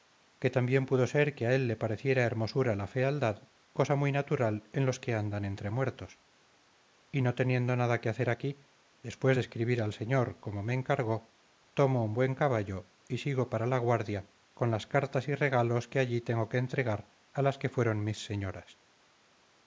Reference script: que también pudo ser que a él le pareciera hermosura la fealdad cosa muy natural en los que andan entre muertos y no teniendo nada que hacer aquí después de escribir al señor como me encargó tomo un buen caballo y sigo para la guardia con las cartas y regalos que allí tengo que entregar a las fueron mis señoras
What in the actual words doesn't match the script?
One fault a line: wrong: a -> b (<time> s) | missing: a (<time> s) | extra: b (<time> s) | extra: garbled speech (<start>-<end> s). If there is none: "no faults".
extra: que (17.6 s)